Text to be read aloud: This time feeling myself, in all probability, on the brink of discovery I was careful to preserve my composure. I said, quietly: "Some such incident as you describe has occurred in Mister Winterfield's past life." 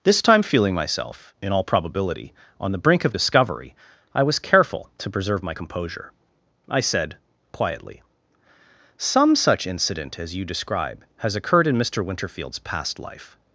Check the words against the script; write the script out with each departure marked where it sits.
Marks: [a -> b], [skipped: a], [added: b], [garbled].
This time feeling myself, in all probability, on the brink of discovery I was careful to preserve my composure. I said, quietly: "Some such incident as you describe has occurred in Mister Winterfield's past life."